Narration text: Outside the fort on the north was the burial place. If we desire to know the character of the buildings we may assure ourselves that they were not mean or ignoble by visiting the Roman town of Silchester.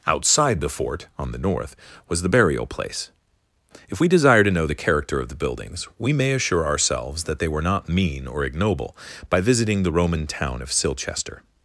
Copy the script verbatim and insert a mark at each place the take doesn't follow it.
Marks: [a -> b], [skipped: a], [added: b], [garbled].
Outside the fort on the north was the burial place. If we desire to know the character of the buildings we may assure ourselves that they were not mean or ignoble by visiting the Roman town of Silchester.